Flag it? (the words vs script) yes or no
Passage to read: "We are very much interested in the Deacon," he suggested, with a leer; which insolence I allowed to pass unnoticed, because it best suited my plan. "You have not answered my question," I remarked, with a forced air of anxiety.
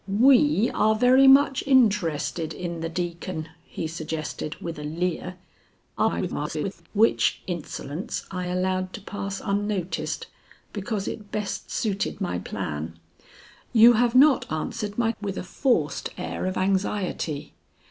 yes